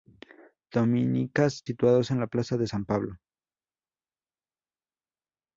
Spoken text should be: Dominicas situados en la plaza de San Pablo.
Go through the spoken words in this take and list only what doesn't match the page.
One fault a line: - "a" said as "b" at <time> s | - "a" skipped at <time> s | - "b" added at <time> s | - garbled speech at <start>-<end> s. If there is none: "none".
none